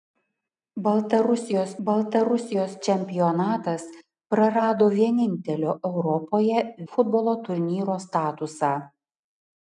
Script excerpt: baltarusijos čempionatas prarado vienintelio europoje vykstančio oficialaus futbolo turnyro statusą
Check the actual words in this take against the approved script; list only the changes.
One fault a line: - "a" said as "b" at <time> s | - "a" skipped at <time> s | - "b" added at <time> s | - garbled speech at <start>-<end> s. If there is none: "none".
- "baltarusijos" added at 1.9 s
- "vykstančio oficialaus" skipped at 6.6 s